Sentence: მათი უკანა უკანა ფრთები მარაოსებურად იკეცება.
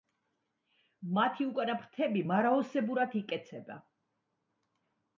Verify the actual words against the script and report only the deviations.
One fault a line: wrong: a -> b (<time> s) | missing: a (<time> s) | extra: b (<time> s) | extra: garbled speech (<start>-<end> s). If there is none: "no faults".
missing: უკანა (1.8 s)